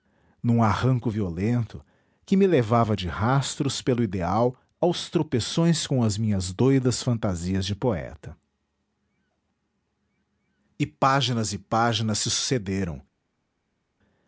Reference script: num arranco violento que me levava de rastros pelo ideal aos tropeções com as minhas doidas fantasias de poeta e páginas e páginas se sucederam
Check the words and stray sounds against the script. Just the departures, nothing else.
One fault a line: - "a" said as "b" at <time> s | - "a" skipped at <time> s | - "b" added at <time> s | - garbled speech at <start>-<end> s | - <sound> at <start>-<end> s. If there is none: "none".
none